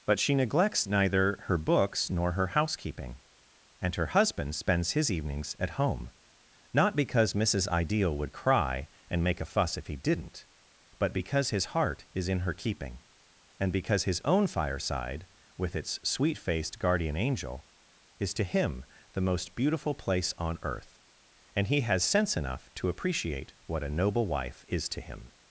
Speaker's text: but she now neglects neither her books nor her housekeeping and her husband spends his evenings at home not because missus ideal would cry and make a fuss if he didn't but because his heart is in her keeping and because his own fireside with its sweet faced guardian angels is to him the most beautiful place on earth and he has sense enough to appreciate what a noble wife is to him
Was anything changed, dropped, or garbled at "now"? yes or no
yes